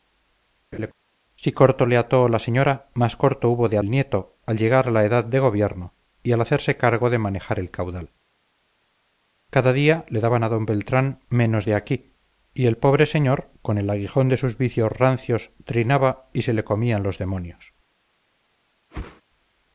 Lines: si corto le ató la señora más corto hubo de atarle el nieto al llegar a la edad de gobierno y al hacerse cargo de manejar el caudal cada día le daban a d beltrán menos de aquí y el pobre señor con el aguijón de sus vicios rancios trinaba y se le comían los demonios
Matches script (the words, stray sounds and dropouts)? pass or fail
fail